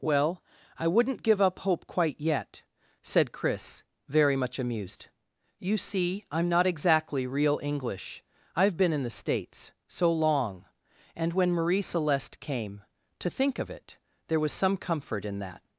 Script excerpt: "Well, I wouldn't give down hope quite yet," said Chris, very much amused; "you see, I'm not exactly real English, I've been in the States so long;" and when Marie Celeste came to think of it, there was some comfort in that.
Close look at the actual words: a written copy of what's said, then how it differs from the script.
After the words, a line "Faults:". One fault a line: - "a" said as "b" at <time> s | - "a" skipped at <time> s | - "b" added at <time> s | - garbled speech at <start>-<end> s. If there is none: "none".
"Well, I wouldn't give up hope quite yet," said Chris, very much amused; "you see, I'm not exactly real English, I've been in the States so long;" and when Marie Celeste came to think of it, there was some comfort in that.
Faults:
- "down" said as "up" at 1.4 s